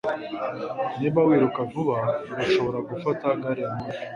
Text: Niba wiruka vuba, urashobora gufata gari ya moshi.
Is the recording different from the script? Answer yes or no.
no